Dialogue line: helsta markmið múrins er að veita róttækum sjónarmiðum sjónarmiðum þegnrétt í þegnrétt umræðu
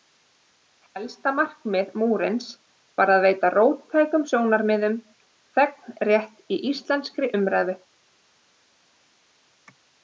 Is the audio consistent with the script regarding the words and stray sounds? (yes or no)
no